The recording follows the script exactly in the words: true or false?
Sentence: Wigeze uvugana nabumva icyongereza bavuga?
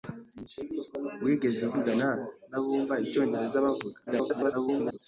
false